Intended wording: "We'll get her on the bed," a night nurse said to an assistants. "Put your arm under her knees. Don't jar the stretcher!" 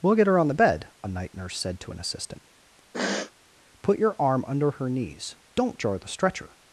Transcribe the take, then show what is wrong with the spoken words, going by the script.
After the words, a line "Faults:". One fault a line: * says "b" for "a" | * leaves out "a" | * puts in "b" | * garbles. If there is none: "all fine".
"We'll get her on the bed," a night nurse said to an assistant. "Put your arm under her knees. Don't jar the stretcher!"
Faults:
* says "assistant" for "assistants"